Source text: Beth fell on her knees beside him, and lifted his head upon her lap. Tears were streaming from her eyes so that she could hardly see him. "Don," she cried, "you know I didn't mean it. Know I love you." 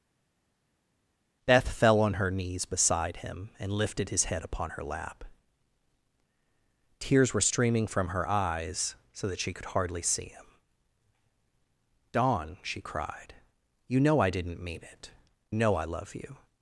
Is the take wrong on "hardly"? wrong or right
right